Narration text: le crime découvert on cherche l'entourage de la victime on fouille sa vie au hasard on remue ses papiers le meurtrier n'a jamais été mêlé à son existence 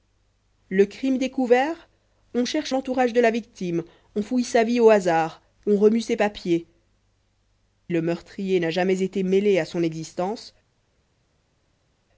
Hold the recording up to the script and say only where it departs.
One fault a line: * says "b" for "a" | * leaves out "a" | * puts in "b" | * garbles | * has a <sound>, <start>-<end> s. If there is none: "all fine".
all fine